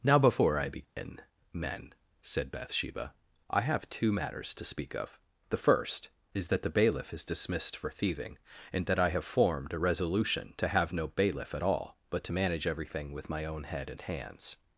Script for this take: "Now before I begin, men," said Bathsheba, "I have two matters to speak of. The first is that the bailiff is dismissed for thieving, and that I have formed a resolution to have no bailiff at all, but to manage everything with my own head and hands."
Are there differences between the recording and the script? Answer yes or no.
no